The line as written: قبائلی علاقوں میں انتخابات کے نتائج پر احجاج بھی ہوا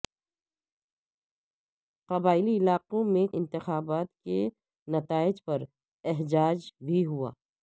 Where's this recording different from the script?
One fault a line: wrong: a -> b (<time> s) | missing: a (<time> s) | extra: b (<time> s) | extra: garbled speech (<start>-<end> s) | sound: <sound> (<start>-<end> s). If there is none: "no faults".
no faults